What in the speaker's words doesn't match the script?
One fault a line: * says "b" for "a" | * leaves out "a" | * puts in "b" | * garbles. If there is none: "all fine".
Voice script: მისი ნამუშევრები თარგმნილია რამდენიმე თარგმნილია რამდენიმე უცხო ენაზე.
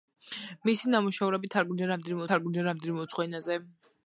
all fine